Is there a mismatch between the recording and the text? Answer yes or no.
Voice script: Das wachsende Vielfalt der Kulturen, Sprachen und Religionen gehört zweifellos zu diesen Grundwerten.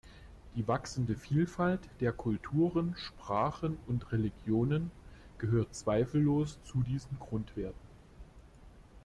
yes